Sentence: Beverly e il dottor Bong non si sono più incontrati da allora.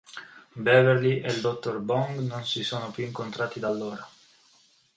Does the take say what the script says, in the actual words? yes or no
yes